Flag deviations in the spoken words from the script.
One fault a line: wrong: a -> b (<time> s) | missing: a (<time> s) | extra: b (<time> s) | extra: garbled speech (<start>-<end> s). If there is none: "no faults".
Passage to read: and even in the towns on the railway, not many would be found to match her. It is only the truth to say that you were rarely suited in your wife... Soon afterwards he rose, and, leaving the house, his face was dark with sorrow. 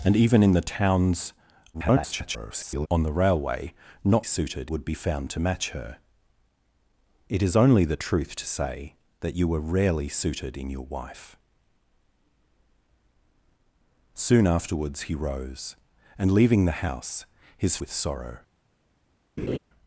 extra: garbled speech (1.7-2.9 s)
wrong: many -> suited (4.2 s)
missing: face was dark (17.8 s)